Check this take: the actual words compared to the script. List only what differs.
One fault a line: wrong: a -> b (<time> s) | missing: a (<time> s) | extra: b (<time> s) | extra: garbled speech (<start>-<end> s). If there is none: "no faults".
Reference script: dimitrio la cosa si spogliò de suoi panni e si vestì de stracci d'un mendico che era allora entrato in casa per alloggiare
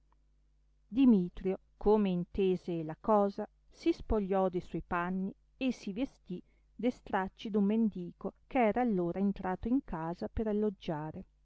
extra: come intese (1.8 s)